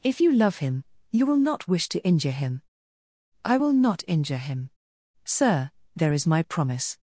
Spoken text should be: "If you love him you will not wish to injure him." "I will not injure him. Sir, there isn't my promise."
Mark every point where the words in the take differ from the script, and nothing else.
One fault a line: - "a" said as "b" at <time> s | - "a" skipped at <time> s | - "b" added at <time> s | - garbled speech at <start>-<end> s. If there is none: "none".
- "isn't" said as "is" at 6.1 s